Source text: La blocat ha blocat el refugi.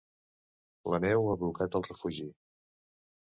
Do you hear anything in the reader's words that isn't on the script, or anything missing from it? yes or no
yes